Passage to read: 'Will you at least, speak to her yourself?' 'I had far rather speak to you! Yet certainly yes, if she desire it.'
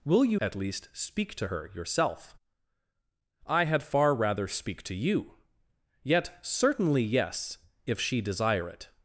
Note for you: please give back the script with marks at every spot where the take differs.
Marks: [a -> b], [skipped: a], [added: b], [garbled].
'Will you at least, speak to her yourself?' 'I had far rather speak to you! Yet certainly yes, if she desire it.'